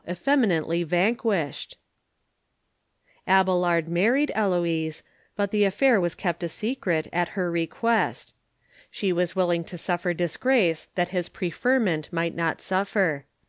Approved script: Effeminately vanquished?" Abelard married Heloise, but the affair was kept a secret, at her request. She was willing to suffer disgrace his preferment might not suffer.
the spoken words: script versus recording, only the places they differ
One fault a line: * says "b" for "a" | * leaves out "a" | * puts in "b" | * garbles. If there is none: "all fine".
* puts in "that"